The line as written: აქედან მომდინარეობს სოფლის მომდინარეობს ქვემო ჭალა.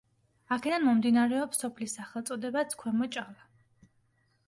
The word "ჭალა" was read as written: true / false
true